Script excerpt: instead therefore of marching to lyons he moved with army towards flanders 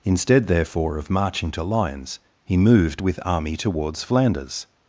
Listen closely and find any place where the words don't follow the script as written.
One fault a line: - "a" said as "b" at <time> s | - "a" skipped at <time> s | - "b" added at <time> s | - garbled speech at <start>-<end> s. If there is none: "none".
none